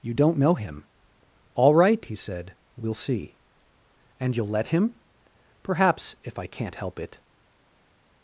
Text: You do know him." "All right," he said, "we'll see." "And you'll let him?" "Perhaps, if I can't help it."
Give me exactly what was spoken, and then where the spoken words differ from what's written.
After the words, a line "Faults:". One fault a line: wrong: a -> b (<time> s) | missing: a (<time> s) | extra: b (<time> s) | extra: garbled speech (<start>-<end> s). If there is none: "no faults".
You don't know him." "All right," he said, "we'll see." "And you'll let him?" "Perhaps, if I can't help it."
Faults:
wrong: do -> don't (0.1 s)